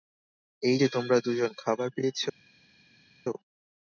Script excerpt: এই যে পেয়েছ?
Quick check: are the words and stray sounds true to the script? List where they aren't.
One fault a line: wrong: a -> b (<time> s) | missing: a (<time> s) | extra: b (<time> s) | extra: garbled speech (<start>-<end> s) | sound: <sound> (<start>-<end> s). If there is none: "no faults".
extra: তোমরা দুজন খাবার (0.9 s)